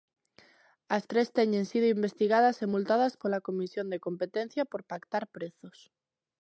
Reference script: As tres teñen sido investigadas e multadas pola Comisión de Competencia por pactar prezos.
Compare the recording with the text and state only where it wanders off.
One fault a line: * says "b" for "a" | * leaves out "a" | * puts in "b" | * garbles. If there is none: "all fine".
all fine